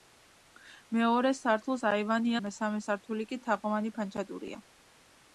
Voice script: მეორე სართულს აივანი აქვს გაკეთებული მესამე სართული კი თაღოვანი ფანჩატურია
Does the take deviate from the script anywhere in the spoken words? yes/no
yes